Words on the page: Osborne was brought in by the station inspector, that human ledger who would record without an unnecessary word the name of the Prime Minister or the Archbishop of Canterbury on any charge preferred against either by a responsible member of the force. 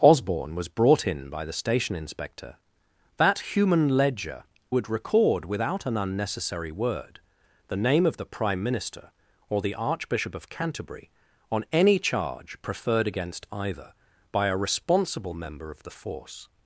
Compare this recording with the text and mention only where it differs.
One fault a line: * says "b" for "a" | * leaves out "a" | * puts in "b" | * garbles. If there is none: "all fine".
* leaves out "who"